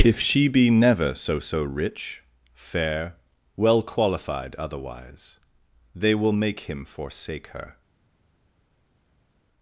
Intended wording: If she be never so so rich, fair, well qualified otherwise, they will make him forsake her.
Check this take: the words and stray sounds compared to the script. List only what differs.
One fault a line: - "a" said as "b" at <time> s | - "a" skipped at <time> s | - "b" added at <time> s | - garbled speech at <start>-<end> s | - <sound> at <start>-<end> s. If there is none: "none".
none